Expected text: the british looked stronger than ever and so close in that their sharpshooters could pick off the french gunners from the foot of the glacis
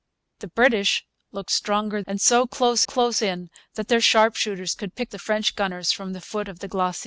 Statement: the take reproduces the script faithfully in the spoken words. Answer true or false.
false